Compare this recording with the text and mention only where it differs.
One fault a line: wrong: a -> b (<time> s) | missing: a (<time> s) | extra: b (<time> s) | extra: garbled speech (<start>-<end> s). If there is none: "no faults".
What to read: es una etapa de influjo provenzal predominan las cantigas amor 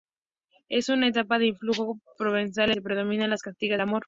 no faults